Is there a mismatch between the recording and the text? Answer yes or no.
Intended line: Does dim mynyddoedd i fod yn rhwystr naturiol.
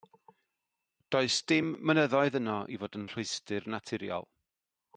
yes